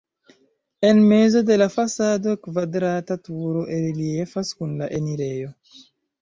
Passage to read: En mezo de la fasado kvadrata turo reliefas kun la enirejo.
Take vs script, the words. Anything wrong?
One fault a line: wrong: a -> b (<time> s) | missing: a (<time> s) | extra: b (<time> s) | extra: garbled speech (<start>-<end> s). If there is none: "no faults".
no faults